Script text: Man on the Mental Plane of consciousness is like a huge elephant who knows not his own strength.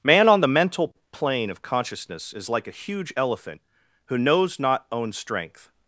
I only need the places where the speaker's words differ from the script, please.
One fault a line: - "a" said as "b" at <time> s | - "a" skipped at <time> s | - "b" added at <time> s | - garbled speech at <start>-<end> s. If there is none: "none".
- "his" skipped at 4.8 s